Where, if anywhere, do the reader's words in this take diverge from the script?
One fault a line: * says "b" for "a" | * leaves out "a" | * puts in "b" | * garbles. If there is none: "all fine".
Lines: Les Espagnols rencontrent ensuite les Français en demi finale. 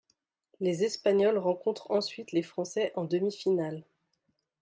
all fine